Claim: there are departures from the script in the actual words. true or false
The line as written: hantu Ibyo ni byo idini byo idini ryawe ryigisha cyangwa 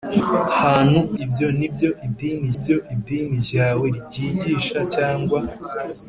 false